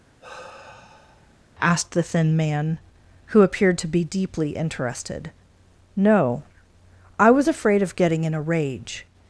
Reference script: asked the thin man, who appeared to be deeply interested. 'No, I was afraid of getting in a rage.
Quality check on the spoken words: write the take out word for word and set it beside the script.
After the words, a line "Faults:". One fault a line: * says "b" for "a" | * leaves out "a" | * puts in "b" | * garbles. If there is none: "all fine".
asked the thin man, who appeared to be deeply interested. 'No, I was afraid of getting in a rage.
Faults:
all fine